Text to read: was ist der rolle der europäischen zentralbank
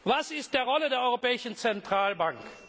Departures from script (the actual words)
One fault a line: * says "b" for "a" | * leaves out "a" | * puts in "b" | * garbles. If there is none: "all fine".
all fine